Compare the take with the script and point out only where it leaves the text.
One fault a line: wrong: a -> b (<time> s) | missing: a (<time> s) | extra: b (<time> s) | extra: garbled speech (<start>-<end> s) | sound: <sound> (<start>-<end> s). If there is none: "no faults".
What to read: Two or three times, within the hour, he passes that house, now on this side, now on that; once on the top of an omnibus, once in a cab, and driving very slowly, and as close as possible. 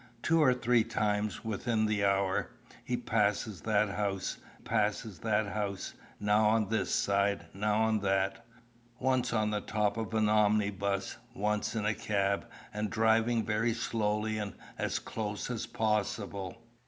extra: passes that house (4.6 s)